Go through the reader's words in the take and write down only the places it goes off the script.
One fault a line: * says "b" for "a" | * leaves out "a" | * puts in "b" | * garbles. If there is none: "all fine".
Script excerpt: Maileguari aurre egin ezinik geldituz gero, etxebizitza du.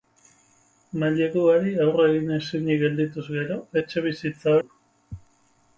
all fine